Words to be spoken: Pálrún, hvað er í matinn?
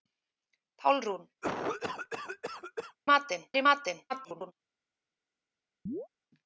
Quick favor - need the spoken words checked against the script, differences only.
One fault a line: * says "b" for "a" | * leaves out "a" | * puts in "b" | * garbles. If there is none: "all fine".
* says "matinn" for "hvað"
* garbles